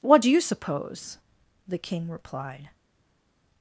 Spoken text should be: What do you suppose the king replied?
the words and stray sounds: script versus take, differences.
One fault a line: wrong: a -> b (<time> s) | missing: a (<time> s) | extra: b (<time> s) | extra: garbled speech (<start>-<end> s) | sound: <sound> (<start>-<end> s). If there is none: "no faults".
no faults